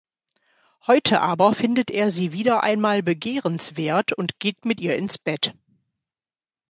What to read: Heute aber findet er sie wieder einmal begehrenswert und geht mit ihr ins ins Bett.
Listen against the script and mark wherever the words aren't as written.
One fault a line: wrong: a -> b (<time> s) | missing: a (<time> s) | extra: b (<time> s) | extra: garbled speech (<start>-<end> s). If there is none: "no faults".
missing: ins (5.2 s)